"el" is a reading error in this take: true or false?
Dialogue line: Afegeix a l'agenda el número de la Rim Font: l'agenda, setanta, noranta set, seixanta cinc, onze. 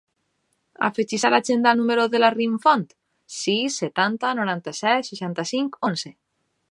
false